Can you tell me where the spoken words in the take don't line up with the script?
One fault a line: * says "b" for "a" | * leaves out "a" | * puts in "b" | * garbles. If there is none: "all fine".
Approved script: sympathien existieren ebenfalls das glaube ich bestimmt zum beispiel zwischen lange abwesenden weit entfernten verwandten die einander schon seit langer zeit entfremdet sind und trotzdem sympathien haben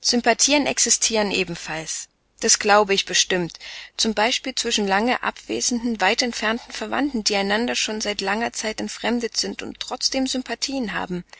all fine